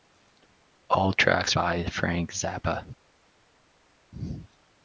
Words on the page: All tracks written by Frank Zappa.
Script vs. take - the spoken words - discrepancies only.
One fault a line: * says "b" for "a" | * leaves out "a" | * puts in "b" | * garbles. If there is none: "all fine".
* leaves out "written"